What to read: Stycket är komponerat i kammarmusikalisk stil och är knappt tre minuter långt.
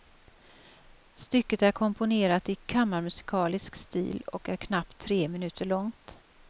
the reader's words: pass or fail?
pass